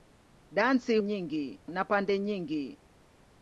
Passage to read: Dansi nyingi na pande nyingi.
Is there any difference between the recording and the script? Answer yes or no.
no